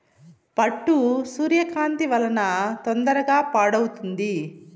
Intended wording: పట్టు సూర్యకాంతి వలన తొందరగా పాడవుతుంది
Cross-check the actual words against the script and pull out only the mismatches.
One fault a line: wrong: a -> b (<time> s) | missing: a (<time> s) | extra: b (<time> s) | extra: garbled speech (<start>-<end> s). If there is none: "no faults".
no faults